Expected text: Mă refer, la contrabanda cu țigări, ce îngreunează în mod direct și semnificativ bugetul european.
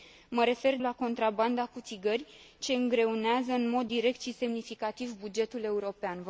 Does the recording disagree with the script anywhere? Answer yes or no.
no